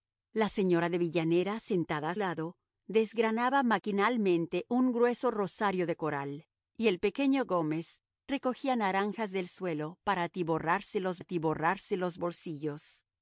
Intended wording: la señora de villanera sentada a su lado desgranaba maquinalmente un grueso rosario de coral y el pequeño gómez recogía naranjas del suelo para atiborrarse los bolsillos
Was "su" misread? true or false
true